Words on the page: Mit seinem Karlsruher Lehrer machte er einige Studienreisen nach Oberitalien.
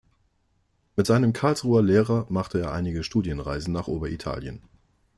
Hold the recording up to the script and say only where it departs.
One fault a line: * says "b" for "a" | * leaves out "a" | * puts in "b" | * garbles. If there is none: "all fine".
all fine